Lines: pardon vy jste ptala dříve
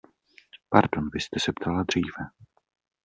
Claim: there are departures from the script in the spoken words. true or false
true